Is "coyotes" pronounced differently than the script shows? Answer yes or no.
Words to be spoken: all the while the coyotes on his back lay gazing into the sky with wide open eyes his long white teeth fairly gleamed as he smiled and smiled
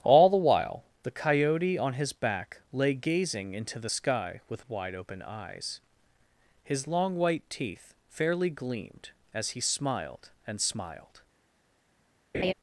yes